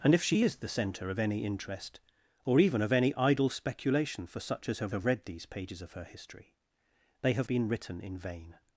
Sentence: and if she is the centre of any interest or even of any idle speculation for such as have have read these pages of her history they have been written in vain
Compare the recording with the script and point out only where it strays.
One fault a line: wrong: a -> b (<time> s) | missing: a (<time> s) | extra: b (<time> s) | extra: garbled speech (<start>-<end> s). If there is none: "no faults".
no faults